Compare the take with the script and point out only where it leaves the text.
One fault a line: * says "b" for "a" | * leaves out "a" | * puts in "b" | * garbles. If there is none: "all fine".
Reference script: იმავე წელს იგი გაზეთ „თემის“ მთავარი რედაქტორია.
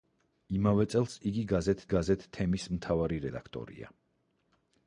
* puts in "გაზეთ"